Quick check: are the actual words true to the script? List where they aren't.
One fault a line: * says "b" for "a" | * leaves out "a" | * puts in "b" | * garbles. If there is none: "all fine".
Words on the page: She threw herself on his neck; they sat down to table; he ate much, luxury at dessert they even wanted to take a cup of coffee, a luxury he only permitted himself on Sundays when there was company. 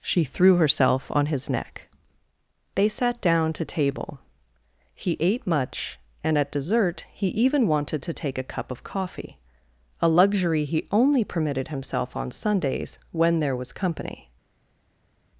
* says "and" for "luxury"
* says "he" for "they"